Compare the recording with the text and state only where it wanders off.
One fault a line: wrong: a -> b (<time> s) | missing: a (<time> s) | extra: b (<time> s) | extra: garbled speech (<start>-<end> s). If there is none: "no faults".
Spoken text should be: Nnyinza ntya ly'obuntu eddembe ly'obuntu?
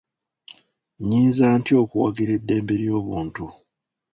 wrong: ly'obuntu -> okuwagira (1.8 s)